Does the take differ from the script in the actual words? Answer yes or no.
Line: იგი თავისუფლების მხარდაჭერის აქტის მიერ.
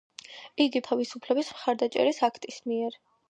no